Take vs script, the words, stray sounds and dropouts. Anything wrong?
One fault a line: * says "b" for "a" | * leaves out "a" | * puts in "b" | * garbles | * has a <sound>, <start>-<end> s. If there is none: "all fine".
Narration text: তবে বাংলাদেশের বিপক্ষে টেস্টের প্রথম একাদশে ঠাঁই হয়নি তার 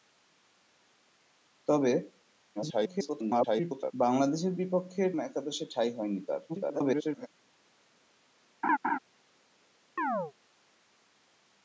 * garbles
* leaves out "টেস্টের প্রথম"
* garbles
* has a laugh, 8.6-9.0 s
* has a chirp, 10.0-10.3 s